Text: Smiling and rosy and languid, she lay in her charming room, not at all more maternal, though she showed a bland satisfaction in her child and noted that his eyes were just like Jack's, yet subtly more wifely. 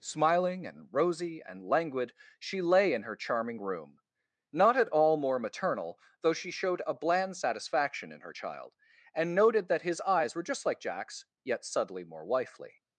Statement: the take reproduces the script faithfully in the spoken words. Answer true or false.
true